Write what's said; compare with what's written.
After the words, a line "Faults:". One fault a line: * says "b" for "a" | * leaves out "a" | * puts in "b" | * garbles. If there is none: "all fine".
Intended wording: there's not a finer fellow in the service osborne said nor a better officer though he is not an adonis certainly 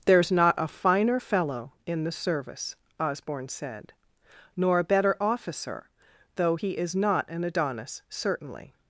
there's not a finer fellow in the service osborne said nor a better officer though he is not an adonis certainly
Faults:
all fine